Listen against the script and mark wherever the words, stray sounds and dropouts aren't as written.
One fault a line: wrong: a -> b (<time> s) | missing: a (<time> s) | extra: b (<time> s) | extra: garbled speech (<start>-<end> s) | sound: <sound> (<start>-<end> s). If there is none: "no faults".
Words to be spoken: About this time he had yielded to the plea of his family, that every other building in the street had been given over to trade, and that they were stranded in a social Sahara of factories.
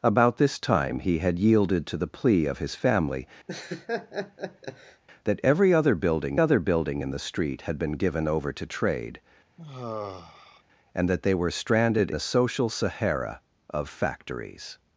sound: laugh (3.5-5.0 s)
extra: other building (6.4 s)
sound: sigh (9.6-10.6 s)
missing: in (12.1 s)